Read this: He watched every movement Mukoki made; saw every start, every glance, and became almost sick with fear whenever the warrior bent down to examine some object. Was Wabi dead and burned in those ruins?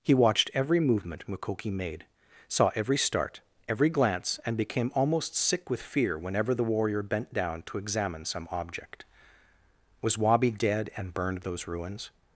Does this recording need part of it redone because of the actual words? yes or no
yes